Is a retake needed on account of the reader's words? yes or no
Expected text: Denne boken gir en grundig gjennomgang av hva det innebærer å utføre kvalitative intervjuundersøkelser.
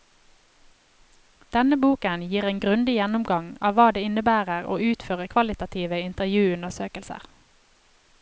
no